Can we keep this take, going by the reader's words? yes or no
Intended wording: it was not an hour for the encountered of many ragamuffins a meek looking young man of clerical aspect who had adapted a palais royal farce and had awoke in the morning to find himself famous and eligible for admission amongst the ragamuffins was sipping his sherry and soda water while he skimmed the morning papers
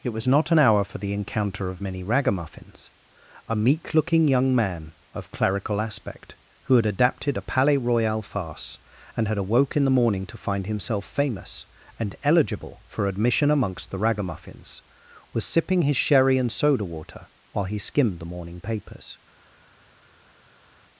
no